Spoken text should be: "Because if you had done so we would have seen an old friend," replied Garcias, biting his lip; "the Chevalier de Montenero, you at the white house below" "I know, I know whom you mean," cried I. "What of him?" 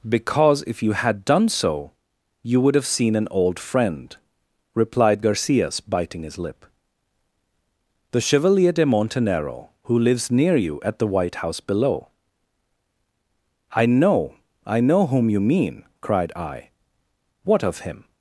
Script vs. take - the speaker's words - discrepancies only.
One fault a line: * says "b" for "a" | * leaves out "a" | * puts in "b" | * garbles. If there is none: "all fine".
* says "you" for "we"
* puts in "who lives near"